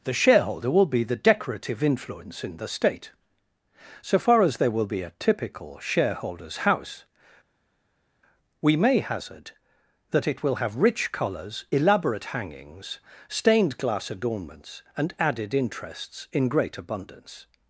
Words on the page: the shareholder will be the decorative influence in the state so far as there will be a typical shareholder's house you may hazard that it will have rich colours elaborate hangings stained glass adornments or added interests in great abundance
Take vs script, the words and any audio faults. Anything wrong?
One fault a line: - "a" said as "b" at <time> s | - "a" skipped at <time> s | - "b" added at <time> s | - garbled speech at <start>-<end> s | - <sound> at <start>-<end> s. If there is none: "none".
- "you" said as "we" at 8.6 s
- "or" said as "and" at 15.0 s